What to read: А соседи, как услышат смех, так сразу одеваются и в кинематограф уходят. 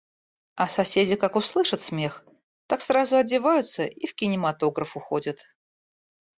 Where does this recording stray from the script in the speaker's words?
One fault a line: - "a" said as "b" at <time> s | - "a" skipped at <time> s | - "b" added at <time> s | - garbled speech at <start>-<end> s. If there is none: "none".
none